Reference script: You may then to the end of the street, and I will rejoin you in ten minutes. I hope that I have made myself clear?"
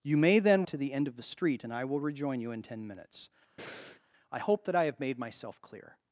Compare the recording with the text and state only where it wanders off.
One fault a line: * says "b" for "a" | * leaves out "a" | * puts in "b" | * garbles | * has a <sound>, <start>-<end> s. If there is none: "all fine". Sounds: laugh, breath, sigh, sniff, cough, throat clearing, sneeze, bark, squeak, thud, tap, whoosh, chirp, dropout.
* has a breath, 3.6-4.0 s